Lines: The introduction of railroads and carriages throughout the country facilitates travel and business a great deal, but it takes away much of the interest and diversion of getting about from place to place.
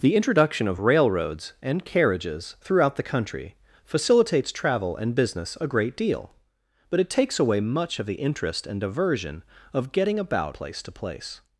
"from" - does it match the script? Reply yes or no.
no